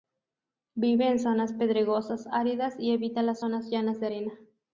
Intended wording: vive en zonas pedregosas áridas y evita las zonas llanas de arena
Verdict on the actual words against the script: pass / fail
pass